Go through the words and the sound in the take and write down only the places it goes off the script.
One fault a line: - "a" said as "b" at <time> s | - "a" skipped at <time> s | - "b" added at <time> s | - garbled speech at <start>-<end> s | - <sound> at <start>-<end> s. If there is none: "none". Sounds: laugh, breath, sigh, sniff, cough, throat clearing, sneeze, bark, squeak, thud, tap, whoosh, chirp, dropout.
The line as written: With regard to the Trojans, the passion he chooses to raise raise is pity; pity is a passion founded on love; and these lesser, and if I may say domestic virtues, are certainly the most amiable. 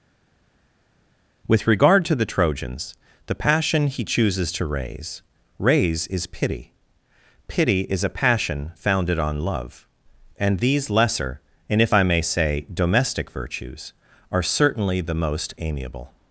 none